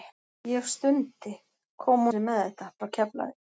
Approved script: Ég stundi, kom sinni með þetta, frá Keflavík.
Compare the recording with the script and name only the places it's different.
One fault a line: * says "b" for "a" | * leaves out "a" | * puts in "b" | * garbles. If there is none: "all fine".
all fine